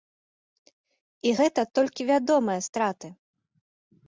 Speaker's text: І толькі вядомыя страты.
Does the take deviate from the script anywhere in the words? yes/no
yes